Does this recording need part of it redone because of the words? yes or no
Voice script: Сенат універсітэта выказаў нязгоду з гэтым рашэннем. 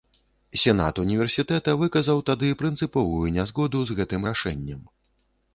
yes